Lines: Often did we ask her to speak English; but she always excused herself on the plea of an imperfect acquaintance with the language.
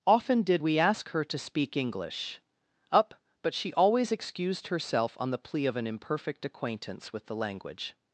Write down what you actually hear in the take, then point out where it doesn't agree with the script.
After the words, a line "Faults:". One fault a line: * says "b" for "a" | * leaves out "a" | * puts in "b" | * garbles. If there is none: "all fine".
Often did we ask her to speak English; up but she always excused herself on the plea of an imperfect acquaintance with the language.
Faults:
* puts in "up"